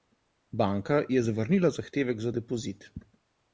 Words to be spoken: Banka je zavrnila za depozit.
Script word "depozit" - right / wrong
right